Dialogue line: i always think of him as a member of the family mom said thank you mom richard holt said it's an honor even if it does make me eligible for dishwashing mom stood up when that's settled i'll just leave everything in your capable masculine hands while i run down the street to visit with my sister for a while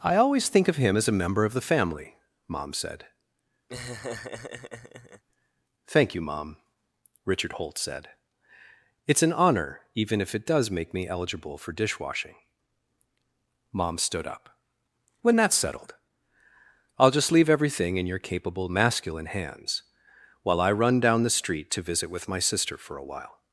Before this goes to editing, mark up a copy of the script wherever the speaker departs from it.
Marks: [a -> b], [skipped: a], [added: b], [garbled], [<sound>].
i always think of him as a member of the family mom said [laugh] thank you mom richard holt said it's an honor even if it does make me eligible for dishwashing mom stood up when that's settled i'll just leave everything in your capable masculine hands while i run down the street to visit with my sister for a while